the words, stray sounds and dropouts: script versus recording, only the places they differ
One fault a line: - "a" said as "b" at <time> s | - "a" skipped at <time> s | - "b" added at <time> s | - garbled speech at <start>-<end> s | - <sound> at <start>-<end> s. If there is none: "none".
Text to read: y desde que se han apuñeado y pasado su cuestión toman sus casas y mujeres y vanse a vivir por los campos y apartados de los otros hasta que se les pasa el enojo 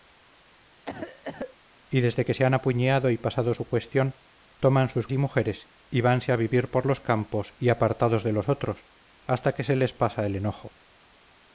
- cough at 0.8-1.6 s
- "casas" skipped at 5.1 s